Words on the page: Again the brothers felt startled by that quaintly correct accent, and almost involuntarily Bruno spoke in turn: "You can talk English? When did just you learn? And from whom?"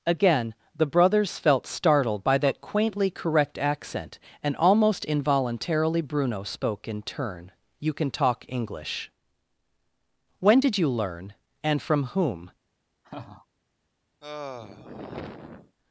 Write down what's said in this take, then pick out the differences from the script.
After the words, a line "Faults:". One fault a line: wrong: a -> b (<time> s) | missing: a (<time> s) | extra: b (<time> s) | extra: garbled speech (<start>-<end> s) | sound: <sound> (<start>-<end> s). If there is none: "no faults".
Again the brothers felt startled by that quaintly correct accent, and almost involuntarily Bruno spoke in turn: "You can talk English? When did you learn? And from whom?"
Faults:
missing: just (10.8 s)
sound: laugh (13.0-13.5 s)
sound: sigh (14.2-15.8 s)